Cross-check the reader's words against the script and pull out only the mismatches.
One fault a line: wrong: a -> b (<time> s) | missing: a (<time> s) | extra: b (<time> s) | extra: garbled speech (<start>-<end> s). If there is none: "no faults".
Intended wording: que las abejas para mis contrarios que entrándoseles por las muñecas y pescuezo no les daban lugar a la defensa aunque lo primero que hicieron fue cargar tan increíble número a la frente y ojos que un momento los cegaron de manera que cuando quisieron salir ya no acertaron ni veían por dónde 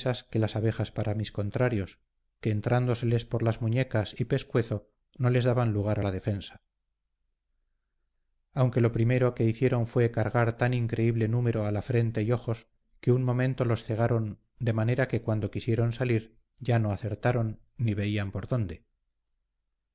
no faults